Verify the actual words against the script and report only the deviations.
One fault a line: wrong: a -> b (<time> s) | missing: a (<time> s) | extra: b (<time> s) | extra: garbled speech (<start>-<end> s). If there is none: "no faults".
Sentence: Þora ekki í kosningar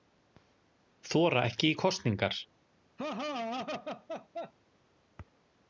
no faults